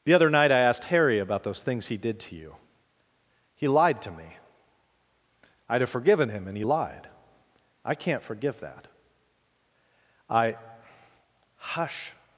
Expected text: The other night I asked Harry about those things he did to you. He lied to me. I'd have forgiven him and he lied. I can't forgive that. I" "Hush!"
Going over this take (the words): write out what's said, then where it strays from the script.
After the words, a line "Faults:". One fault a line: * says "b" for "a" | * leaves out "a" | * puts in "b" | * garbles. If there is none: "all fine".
The other night I asked Harry about those things he did to you. He lied to me. I'd have forgiven him and he lied. I can't forgive that. I" "Hush!"
Faults:
all fine